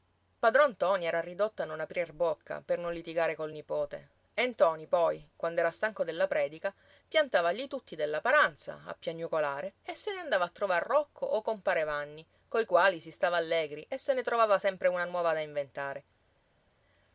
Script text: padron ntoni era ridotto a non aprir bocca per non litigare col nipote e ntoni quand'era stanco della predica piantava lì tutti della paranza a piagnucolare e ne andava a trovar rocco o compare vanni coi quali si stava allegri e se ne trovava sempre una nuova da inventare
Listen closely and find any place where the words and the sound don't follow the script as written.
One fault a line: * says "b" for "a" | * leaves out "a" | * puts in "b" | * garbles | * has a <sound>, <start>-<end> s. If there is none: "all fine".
* puts in "poi"
* puts in "se"